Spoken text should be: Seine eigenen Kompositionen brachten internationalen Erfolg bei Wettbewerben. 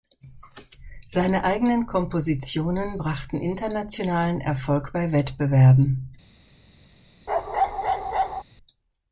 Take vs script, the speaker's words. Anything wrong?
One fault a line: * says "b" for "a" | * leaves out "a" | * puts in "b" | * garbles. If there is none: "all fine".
all fine